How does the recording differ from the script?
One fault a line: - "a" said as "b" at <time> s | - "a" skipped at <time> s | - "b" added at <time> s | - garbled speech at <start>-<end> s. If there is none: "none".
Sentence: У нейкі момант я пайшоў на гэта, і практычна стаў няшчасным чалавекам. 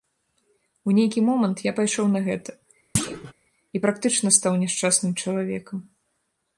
none